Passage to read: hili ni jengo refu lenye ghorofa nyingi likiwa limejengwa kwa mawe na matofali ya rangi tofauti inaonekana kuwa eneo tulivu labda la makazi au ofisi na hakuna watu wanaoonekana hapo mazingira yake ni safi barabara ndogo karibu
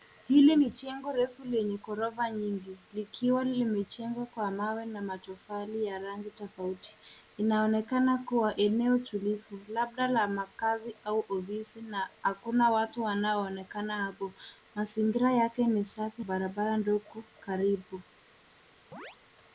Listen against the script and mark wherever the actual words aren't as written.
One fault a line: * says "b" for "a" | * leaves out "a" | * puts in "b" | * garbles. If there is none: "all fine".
all fine